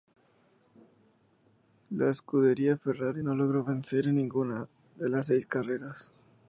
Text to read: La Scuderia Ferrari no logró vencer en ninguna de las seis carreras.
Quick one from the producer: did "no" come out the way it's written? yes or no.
yes